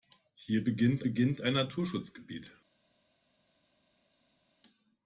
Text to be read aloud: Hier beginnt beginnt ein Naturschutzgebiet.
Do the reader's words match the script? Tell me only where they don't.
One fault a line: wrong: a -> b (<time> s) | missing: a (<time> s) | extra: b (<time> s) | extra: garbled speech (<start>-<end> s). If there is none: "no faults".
no faults